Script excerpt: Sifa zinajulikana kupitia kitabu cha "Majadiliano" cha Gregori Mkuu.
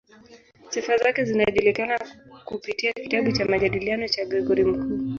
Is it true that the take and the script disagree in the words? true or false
true